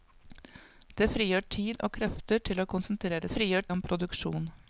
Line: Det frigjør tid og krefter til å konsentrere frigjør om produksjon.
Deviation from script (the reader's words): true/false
false